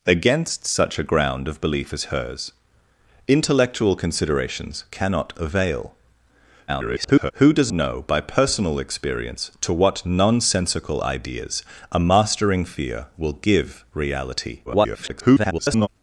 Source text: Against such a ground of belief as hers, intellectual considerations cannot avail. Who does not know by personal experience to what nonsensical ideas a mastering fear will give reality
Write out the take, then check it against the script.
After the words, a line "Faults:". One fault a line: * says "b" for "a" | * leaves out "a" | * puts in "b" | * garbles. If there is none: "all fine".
Against such a ground of belief as hers, intellectual considerations cannot avail. [garbled] Who does know by personal experience to what nonsensical ideas a mastering fear will give reality [garbled]
Faults:
* garbles
* leaves out "not"
* garbles